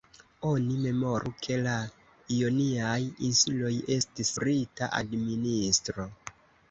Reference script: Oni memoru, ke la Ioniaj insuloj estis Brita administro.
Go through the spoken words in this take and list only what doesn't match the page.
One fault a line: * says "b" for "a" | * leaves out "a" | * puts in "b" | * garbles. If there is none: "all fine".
all fine